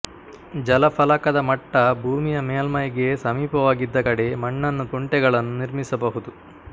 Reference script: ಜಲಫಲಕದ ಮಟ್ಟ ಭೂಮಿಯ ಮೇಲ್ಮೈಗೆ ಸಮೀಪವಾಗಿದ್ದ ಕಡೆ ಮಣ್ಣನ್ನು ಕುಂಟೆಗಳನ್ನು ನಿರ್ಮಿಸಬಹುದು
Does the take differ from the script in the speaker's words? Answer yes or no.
no